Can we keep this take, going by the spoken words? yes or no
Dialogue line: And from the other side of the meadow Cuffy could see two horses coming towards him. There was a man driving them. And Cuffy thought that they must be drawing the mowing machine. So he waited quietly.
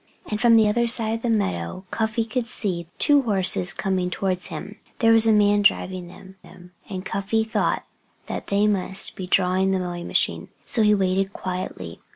no